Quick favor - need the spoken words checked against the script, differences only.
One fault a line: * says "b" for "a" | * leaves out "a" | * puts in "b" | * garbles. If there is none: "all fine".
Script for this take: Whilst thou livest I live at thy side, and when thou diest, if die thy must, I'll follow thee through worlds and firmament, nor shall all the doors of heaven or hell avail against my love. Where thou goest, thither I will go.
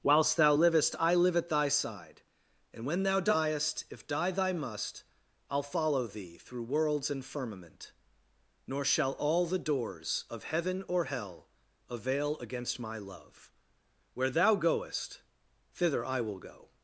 all fine